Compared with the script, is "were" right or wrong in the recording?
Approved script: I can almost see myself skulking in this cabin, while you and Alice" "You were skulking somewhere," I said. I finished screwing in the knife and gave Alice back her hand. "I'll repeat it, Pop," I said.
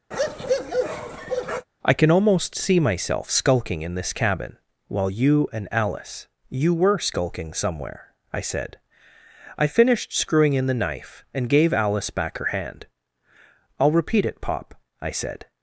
right